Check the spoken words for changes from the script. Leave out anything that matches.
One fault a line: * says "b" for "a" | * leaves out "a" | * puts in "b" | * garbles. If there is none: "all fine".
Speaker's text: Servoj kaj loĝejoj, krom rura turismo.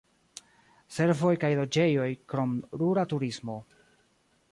all fine